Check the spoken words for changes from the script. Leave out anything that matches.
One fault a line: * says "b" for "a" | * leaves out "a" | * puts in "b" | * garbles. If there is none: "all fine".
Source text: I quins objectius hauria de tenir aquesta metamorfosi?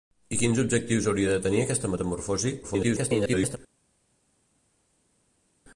* garbles